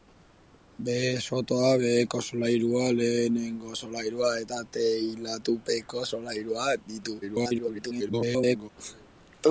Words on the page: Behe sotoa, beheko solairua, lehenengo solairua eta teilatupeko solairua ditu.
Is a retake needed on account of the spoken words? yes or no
yes